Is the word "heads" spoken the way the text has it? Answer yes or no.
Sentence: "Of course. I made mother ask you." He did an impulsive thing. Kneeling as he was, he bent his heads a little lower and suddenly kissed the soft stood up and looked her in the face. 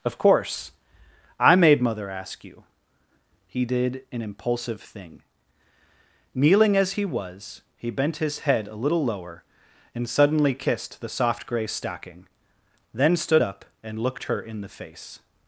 no